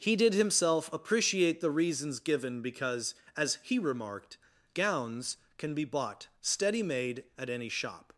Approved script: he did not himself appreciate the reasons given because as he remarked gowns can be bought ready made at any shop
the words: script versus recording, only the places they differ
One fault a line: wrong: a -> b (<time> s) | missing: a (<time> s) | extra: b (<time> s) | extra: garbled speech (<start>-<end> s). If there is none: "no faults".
missing: not (0.3 s)
wrong: ready -> steady (6.4 s)